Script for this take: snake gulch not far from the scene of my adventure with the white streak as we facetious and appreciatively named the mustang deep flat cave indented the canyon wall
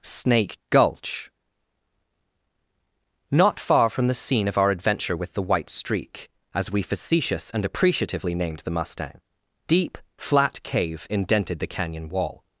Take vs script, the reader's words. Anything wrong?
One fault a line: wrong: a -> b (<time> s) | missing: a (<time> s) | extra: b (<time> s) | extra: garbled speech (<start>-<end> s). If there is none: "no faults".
wrong: my -> our (4.6 s)